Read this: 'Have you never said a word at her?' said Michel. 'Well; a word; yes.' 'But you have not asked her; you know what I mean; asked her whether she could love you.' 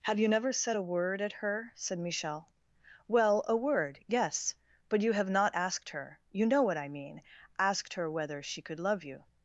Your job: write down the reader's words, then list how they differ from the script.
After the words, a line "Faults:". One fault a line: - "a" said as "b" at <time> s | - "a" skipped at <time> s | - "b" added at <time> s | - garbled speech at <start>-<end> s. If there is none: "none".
'Have you never said a word at her?' said Michel. 'Well; a word; yes.' 'But you have not asked her; you know what I mean; asked her whether she could love you.'
Faults:
none